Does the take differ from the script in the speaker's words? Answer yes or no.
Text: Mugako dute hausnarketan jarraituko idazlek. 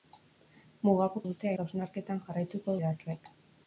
no